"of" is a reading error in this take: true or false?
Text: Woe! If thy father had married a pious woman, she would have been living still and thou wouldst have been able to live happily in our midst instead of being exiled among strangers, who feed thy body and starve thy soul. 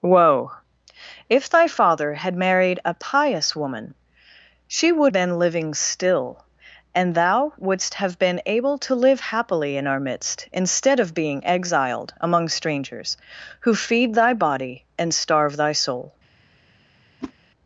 false